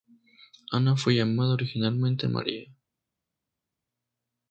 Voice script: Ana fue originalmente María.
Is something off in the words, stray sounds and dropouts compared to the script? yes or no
yes